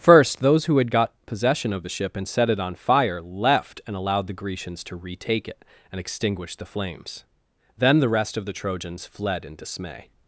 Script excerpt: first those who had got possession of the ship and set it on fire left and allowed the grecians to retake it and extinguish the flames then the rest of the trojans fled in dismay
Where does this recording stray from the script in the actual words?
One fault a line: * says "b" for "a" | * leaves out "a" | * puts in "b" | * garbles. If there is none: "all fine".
all fine